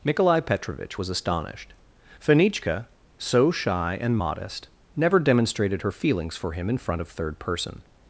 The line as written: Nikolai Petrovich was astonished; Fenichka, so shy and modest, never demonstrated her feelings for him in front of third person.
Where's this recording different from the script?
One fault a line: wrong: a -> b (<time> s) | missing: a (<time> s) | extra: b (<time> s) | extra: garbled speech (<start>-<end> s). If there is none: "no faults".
no faults